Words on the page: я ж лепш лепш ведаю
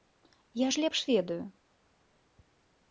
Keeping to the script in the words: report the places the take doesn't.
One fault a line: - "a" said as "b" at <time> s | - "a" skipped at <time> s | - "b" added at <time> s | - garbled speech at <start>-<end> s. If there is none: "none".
- "лепш" skipped at 1.0 s